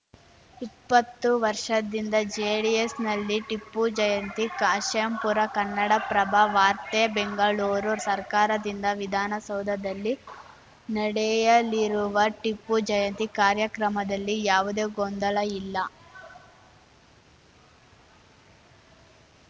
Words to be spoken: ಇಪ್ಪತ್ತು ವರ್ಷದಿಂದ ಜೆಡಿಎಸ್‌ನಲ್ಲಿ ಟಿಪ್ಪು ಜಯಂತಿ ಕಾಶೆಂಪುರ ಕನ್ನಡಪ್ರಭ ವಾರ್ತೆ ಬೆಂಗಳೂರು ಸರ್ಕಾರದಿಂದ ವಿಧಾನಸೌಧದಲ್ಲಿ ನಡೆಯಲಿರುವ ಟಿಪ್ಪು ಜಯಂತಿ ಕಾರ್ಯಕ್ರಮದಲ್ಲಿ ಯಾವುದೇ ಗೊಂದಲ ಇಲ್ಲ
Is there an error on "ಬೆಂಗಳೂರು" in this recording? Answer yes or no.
no